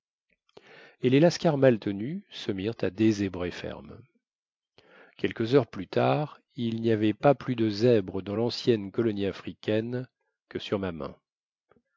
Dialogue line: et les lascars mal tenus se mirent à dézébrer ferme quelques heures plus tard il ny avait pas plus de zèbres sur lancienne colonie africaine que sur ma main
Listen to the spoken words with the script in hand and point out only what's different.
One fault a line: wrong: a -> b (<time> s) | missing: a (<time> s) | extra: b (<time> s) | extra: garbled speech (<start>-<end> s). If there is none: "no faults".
wrong: sur -> dans (8.2 s)